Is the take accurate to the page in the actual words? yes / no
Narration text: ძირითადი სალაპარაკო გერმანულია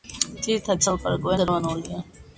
yes